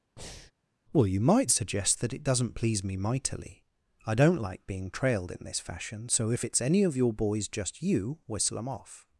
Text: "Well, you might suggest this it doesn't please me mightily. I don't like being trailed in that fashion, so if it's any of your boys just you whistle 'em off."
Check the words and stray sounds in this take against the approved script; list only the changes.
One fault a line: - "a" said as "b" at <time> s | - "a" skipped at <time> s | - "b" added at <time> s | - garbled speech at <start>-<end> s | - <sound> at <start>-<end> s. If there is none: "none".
- breath at 0.2-0.5 s
- "this" said as "that" at 2.0 s
- "that" said as "this" at 5.4 s